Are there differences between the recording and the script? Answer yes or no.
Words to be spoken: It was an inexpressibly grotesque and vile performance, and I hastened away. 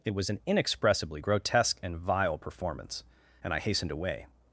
no